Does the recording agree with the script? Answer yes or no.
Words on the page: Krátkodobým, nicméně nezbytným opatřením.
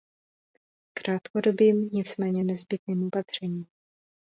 yes